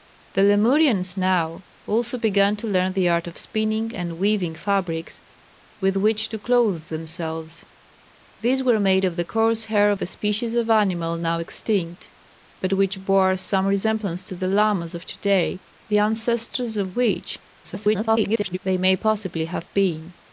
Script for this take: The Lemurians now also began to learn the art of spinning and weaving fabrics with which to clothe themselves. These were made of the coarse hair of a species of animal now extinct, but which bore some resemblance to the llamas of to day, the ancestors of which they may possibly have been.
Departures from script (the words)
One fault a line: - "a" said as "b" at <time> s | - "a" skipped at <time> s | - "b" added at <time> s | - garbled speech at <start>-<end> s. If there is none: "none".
- garbled speech at 17.6-18.6 s